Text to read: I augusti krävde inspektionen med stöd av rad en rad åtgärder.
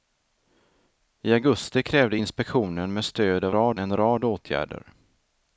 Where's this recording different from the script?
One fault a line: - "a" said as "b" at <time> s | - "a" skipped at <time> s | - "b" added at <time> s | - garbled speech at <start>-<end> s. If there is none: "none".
none